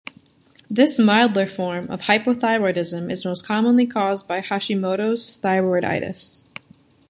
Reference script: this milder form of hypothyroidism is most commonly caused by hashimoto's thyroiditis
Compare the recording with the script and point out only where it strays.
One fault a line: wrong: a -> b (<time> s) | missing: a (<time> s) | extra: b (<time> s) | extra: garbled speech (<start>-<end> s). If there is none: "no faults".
no faults